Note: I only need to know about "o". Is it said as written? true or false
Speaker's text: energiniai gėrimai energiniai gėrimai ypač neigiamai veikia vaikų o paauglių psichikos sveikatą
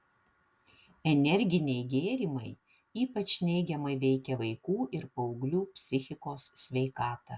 false